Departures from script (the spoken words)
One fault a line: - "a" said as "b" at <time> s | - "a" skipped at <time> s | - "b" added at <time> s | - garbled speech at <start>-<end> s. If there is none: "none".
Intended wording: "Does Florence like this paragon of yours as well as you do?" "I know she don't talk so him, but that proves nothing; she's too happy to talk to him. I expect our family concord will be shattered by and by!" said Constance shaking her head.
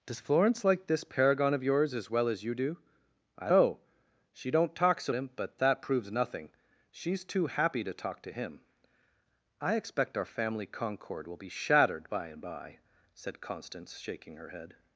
none